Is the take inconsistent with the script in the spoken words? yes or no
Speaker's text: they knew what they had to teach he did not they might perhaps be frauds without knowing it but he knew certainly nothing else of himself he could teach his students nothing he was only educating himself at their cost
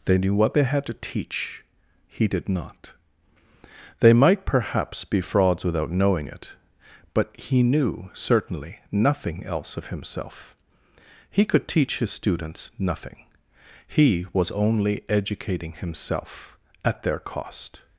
no